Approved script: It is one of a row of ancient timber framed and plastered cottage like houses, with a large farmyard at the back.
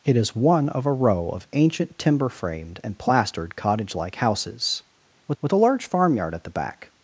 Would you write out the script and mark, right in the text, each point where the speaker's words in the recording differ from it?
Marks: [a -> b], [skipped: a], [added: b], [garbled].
It is one of a row of ancient timber framed and plastered cottage like houses, with [added: with] a large farmyard at the back.